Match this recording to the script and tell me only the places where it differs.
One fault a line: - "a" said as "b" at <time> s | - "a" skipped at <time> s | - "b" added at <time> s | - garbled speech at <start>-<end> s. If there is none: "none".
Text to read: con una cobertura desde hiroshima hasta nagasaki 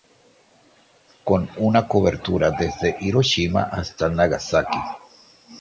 none